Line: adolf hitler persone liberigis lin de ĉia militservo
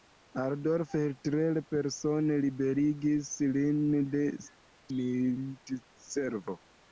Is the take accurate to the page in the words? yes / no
no